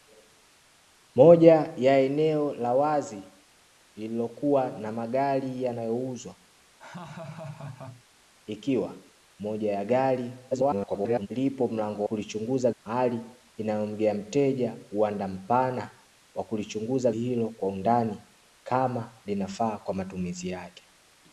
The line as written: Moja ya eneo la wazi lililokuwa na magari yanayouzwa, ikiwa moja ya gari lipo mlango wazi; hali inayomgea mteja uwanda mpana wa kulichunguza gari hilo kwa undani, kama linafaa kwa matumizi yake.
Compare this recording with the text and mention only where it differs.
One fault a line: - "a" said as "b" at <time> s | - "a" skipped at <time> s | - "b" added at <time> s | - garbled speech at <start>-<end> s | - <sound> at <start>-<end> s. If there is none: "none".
- laugh at 6.8-8.0 s
- garbled speech at 10.5-11.3 s
- "wazi" said as "kulichunguza" at 12.0 s
- "gari" skipped at 17.1 s